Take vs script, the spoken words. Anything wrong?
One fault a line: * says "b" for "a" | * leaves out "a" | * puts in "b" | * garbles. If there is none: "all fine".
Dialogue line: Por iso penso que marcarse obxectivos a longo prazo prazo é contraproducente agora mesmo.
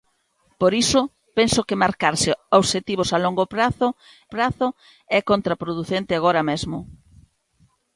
all fine